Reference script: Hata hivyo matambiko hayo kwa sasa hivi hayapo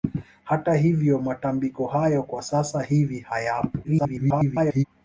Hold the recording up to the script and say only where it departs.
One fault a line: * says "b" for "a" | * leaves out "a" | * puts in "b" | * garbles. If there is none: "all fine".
* garbles